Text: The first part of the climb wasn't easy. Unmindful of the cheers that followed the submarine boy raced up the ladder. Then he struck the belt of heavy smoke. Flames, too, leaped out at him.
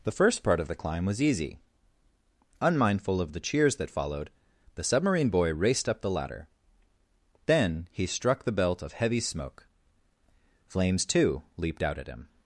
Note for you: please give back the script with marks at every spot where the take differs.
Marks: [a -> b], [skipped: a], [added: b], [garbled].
The first part of the climb [wasn't -> was] easy. Unmindful of the cheers that followed the submarine boy raced up the ladder. Then he struck the belt of heavy smoke. Flames, too, leaped out at him.